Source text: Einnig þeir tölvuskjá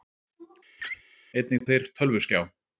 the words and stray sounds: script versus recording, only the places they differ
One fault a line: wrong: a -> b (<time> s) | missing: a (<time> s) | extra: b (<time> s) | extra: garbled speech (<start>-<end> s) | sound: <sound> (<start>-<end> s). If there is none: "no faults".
sound: laugh (0.8-1.0 s)